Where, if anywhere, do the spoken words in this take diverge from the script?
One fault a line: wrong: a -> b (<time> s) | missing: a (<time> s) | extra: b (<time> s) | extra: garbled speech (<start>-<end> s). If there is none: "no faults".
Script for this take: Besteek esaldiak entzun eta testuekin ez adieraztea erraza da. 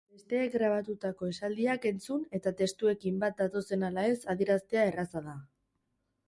extra: grabatutako (0.5 s)
extra: bat datozen ala (3.2 s)